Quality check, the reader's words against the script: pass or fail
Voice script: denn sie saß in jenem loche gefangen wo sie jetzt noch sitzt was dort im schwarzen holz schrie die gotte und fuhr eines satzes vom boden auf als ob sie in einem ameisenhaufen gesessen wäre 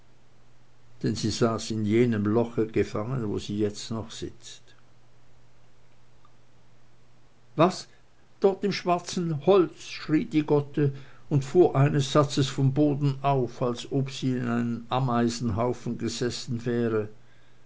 pass